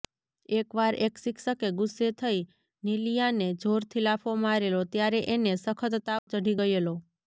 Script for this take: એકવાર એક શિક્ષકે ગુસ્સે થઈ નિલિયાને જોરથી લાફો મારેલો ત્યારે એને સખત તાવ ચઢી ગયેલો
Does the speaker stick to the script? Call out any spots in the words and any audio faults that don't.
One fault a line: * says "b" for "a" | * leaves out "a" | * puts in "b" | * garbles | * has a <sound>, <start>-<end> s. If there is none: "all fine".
* has a dropout, 6.2-6.3 s